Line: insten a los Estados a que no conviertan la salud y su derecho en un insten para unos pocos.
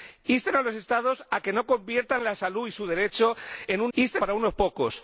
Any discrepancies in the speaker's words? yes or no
no